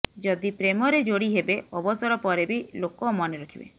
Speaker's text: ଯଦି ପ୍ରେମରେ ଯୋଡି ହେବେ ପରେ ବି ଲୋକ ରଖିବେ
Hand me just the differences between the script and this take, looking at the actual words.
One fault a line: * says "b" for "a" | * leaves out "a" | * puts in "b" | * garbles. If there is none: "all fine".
* puts in "ଅବସର"
* puts in "ମନେ"